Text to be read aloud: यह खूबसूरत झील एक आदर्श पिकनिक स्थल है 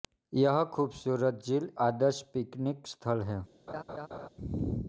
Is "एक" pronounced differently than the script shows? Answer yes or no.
yes